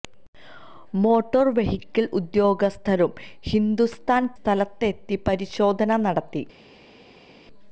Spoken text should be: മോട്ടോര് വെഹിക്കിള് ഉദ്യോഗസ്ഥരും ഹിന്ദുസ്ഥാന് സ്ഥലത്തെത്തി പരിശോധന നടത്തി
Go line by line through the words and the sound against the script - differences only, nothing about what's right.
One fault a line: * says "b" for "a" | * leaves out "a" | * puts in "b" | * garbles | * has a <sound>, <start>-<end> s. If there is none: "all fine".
all fine